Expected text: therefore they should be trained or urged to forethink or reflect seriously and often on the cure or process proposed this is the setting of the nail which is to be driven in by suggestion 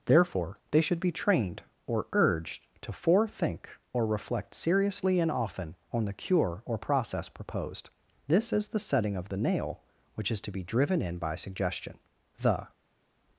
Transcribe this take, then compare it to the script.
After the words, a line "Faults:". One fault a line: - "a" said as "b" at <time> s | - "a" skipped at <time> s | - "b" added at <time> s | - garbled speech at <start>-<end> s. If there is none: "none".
therefore they should be trained or urged to forethink or reflect seriously and often on the cure or process proposed this is the setting of the nail which is to be driven in by suggestion the
Faults:
- "the" added at 12.4 s